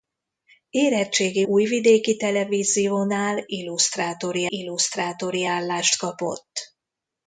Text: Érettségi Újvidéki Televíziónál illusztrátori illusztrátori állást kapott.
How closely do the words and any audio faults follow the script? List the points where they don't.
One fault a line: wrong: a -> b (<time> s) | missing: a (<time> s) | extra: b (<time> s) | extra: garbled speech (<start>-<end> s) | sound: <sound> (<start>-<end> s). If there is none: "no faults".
no faults